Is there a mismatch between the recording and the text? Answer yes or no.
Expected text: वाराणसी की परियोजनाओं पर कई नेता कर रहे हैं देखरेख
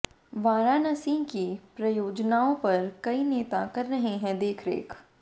no